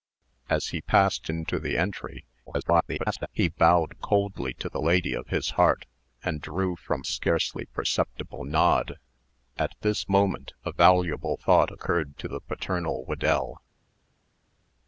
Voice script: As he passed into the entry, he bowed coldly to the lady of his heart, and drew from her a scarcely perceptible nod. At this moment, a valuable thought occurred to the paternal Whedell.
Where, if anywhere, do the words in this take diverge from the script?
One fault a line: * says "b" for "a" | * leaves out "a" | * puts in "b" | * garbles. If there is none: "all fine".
* garbles
* leaves out "her a"